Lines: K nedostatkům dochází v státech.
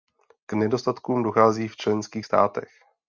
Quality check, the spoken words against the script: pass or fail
fail